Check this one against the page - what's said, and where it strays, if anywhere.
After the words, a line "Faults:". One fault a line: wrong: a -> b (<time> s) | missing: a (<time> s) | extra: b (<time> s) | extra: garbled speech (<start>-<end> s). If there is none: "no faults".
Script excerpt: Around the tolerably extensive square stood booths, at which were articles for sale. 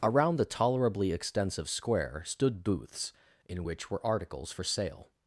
Around the tolerably extensive square stood booths, in which were articles for sale.
Faults:
wrong: at -> in (3.5 s)